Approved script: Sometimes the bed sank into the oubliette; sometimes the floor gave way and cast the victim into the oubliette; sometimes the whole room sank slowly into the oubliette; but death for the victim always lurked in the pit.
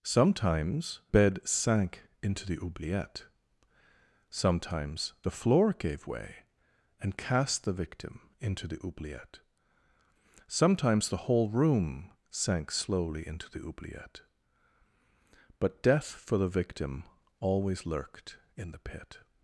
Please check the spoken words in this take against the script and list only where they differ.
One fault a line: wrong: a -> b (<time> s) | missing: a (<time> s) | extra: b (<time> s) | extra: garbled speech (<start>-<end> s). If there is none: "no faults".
missing: the (1.0 s)